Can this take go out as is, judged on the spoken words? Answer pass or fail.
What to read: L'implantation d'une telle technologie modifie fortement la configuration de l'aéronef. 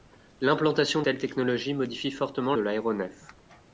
fail